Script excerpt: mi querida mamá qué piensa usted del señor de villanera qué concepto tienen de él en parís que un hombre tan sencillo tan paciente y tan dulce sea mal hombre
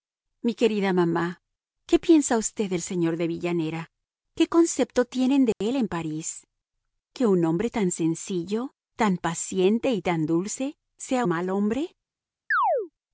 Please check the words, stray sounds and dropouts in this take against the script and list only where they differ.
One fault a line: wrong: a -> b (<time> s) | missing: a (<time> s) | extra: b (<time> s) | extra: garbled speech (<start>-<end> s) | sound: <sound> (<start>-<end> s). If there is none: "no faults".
sound: dropout (5.5-5.6 s)
sound: chirp (12.5-12.9 s)